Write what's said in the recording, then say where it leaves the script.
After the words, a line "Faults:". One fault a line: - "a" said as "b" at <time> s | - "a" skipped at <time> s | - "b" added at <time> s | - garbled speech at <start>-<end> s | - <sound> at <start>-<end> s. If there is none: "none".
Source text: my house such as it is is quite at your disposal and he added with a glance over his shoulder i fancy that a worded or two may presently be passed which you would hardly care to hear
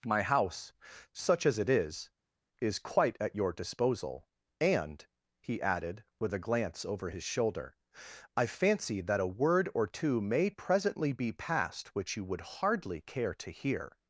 my house such as it is is quite at your disposal and he added with a glance over his shoulder i fancy that a word or two may presently be passed which you would hardly care to hear
Faults:
- "worded" said as "word" at 9.3 s